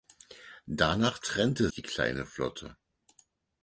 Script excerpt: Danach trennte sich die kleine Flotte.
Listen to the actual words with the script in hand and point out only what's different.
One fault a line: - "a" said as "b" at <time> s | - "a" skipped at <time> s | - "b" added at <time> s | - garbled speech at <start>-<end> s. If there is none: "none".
- "sich" skipped at 1.7 s